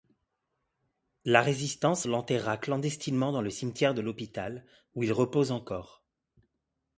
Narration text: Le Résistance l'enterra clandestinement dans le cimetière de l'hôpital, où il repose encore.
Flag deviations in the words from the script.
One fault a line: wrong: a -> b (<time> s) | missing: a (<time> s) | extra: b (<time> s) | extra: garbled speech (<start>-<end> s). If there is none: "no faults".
wrong: Le -> La (1.2 s)